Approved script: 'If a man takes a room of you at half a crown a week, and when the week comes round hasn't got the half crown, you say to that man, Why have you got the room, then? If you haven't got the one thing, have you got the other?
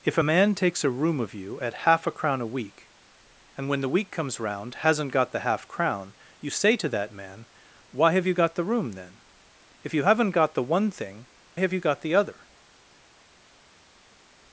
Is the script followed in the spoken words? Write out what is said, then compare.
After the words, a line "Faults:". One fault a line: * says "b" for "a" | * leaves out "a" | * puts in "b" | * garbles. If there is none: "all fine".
'If a man takes a room of you at half a crown a week, and when the week comes round hasn't got the half crown, you say to that man, Why have you got the room, then? If you haven't got the one thing, have you got the other?
Faults:
all fine